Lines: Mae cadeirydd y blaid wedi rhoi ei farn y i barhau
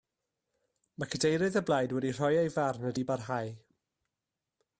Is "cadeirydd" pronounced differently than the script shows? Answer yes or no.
no